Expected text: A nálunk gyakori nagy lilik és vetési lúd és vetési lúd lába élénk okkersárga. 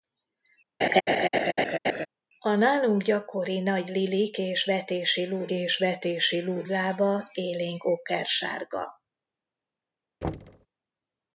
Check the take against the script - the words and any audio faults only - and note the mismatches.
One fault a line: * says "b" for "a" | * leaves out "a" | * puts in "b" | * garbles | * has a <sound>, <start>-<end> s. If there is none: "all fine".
* has a laugh, 0.8-2.1 s
* has a thud, 10.2-10.7 s